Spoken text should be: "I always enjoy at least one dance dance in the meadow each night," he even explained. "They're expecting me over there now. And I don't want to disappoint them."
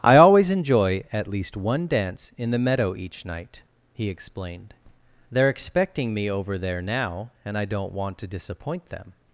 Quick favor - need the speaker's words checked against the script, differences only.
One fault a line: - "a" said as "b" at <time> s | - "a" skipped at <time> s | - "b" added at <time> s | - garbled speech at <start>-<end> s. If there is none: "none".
- "dance" skipped at 2.3 s
- "even" skipped at 4.1 s